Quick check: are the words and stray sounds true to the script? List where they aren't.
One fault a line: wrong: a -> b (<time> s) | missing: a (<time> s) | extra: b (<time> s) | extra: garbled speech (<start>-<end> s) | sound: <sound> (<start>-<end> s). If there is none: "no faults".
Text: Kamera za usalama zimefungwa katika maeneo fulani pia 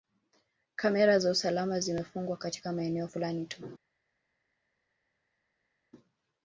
wrong: pia -> tu (3.4 s)